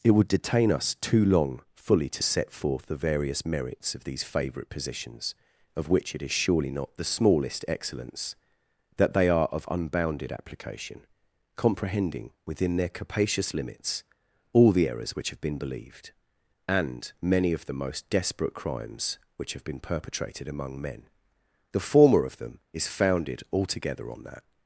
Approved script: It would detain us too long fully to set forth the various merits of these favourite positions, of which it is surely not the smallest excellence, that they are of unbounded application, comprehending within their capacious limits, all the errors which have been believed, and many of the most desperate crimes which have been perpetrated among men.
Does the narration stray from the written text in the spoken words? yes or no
yes